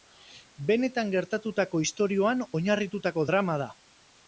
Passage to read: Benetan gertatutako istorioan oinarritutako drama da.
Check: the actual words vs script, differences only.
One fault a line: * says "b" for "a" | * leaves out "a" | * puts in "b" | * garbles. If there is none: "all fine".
all fine